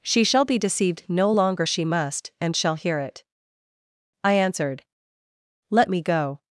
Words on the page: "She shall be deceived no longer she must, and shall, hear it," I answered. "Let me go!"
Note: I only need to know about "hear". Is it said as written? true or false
true